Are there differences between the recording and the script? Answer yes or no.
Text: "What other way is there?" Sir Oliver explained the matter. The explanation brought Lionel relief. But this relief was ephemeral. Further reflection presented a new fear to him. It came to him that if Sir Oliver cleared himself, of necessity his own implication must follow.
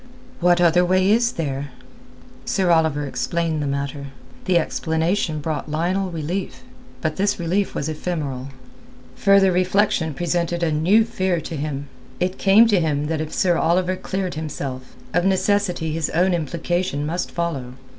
no